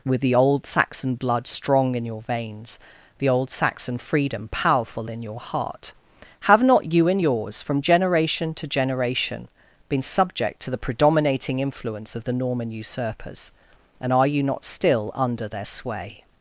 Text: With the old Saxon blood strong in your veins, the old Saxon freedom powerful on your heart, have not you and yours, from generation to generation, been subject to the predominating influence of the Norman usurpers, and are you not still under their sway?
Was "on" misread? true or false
true